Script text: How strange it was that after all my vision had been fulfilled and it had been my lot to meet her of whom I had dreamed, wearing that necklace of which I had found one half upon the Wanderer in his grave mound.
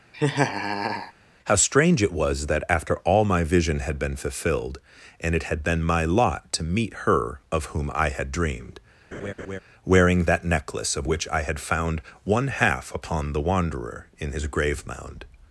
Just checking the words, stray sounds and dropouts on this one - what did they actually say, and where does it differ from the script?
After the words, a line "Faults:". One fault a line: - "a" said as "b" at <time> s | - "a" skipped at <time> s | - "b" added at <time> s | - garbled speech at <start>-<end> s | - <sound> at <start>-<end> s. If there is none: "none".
How strange it was that after all my vision had been fulfilled and it had been my lot to meet her of whom I had dreamed, wearing that necklace of which I had found one half upon the Wanderer in his grave mound.
Faults:
- laugh at 0.1-1.1 s
- laugh at 9.1-9.6 s